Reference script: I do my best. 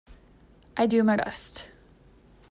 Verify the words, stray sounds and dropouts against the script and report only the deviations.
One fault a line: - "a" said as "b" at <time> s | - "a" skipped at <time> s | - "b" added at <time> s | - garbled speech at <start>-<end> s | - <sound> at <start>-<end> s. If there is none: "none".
none